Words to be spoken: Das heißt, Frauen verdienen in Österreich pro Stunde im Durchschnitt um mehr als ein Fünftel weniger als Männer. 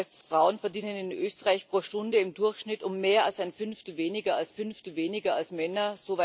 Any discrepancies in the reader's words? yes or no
yes